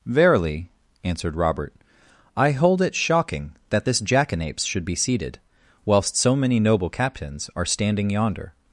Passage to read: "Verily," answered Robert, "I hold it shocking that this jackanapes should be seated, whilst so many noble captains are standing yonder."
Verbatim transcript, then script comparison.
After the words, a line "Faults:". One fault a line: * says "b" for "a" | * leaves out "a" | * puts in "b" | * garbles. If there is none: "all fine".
"Verily," answered Robert, "I hold it shocking that this jackanapes should be seated, whilst so many noble captains are standing yonder."
Faults:
all fine